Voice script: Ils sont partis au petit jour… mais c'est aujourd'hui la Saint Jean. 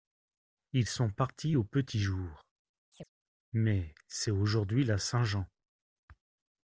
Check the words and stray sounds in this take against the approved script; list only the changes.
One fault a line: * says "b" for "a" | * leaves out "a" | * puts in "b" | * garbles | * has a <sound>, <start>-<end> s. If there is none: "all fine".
* has a chirp, 2.9-3.1 s